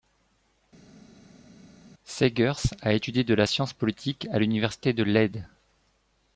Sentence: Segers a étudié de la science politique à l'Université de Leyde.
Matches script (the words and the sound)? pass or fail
pass